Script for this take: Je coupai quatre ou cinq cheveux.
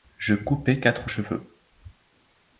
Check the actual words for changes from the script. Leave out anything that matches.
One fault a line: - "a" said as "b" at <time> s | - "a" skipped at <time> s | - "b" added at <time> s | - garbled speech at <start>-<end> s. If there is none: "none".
- "cinq" skipped at 1.1 s